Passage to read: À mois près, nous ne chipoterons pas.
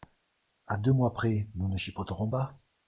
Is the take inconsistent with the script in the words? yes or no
yes